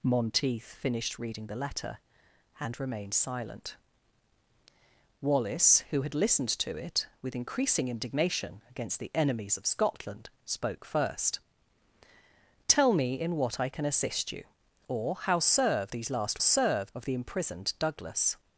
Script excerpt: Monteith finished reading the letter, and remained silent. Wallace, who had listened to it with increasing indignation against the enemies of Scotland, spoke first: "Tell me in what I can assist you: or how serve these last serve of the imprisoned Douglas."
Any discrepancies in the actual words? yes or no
no